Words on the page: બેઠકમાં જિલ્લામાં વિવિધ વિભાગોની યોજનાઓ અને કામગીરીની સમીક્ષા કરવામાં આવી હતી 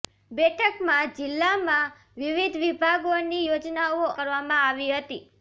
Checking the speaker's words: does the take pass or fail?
fail